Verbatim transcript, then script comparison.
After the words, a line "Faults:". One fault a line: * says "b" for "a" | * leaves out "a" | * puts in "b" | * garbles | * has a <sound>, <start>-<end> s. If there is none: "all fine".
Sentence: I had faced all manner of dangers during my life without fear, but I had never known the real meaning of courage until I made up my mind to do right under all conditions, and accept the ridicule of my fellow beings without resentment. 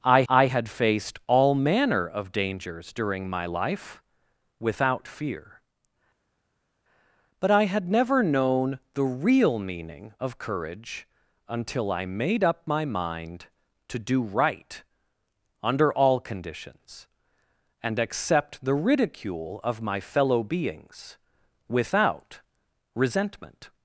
I I had faced all manner of dangers during my life without fear, but I had never known the real meaning of courage until I made up my mind to do right under all conditions, and accept the ridicule of my fellow beings without resentment.
Faults:
* puts in "I"